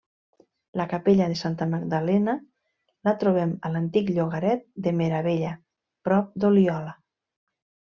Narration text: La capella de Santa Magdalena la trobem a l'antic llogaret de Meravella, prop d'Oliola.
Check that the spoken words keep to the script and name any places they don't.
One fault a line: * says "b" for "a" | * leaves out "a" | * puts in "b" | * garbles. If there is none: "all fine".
all fine